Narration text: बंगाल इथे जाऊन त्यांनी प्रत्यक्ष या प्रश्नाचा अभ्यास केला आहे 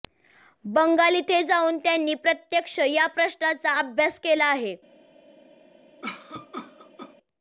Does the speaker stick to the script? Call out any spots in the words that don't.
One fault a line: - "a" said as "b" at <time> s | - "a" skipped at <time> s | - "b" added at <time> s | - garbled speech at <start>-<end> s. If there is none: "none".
none